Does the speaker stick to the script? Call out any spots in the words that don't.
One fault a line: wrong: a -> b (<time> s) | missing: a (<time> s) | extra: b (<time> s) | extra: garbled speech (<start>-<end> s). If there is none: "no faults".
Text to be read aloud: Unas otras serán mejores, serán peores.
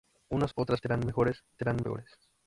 no faults